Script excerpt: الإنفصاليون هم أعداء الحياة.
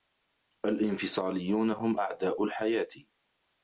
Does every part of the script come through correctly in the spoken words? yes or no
yes